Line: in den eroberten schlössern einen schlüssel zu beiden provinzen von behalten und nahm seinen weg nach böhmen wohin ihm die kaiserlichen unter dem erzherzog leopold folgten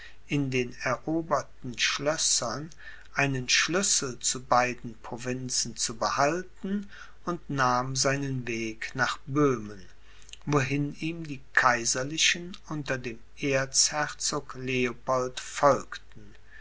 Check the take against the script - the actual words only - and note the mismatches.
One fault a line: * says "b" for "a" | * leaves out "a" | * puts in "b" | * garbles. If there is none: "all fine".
* says "zu" for "von"